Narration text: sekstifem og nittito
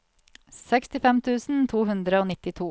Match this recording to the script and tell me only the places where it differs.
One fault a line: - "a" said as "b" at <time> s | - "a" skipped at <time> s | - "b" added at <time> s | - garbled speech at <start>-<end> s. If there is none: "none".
- "tusen to hundre" added at 1.2 s